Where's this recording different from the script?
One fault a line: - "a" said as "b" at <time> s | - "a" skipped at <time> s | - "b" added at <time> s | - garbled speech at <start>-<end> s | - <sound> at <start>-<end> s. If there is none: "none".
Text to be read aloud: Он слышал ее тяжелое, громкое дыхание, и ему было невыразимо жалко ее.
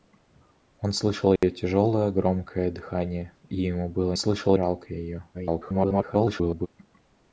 - dropout at 1.4-1.4 s
- "невыразимо" said as "слышал" at 4.2 s
- garbled speech at 5.3-6.7 s